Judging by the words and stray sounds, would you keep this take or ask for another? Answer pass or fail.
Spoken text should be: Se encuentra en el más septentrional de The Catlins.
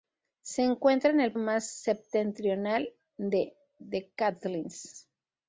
pass